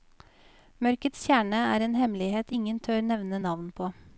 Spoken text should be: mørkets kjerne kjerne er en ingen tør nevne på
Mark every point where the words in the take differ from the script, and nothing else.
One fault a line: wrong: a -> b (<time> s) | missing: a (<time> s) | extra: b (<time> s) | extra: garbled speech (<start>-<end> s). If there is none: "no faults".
missing: kjerne (1.6 s)
extra: hemmelighet (1.9 s)
extra: navn (3.4 s)